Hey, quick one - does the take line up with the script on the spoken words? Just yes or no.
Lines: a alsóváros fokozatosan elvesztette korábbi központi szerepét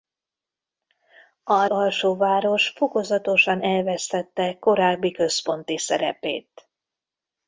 yes